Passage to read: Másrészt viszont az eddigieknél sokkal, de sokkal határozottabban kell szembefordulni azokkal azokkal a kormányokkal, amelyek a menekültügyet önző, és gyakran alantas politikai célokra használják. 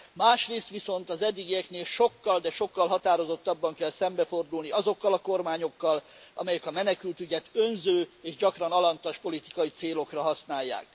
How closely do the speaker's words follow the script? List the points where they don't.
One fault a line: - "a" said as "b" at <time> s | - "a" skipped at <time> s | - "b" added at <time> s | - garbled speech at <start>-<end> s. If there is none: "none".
- "azokkal" skipped at 5.1 s